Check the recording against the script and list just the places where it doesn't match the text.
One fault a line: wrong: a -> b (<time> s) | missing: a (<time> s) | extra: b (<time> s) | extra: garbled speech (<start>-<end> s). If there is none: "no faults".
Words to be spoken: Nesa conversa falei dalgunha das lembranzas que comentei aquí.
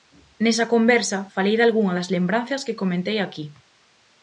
no faults